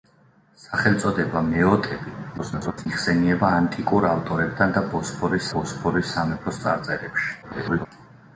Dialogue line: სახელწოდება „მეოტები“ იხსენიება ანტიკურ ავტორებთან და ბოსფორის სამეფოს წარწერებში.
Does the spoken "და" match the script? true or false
true